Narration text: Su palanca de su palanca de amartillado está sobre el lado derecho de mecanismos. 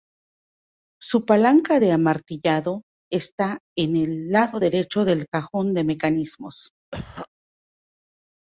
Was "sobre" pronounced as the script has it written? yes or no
no